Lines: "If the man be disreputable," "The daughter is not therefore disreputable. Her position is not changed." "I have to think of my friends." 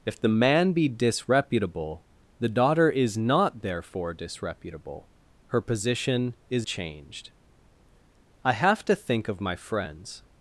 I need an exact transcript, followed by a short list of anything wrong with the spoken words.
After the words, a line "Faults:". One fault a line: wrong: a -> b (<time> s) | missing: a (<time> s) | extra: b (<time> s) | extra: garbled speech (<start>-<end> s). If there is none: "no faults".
"If the man be disreputable," "The daughter is not therefore disreputable. Her position is changed." "I have to think of my friends."
Faults:
missing: not (6.7 s)